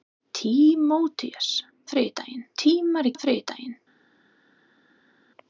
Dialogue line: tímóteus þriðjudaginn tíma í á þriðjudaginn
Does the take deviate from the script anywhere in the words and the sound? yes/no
no